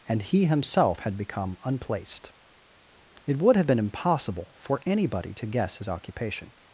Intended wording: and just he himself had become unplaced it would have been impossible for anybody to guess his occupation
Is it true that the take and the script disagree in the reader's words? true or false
true